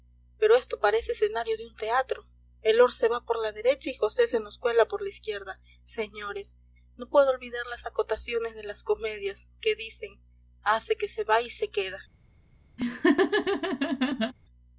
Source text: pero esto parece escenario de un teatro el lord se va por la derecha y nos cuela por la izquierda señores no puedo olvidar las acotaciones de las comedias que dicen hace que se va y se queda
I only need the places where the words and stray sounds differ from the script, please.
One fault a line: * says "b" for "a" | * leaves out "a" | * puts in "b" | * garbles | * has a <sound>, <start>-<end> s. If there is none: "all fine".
* puts in "josé se"
* has a laugh, 12.8-14.3 s